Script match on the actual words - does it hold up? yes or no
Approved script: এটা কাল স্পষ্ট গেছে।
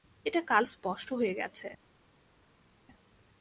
no